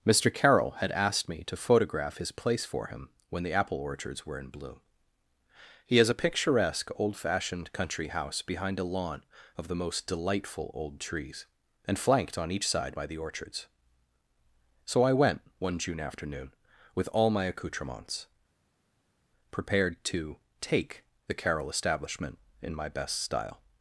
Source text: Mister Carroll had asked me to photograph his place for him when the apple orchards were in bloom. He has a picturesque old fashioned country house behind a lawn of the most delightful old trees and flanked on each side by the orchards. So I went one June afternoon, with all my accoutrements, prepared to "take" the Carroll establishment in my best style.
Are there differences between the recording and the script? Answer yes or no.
no